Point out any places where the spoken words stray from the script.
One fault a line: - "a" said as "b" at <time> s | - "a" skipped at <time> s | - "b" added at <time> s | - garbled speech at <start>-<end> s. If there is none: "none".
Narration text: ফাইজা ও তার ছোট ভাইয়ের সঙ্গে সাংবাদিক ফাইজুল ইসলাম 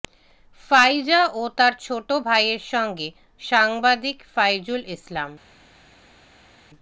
none